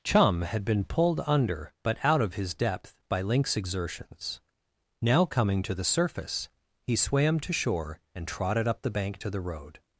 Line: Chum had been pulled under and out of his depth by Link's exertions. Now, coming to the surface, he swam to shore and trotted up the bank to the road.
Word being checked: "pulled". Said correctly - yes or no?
yes